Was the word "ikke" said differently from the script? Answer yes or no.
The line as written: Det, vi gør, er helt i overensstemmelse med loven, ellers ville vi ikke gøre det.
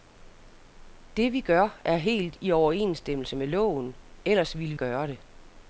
yes